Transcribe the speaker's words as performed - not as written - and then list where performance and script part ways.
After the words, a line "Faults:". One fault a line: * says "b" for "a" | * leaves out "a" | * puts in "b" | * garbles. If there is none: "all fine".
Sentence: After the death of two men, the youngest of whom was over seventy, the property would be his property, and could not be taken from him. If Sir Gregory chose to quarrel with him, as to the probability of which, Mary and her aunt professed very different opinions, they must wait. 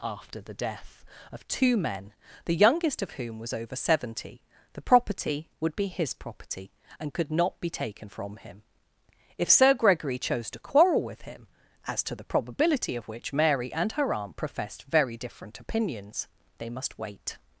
After the death of two men, the youngest of whom was over seventy, the property would be his property, and could not be taken from him. If Sir Gregory chose to quarrel with him, as to the probability of which, Mary and her aunt professed very different opinions, they must wait.
Faults:
all fine